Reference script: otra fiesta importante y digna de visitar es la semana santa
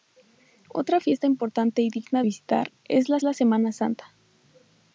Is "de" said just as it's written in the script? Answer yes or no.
no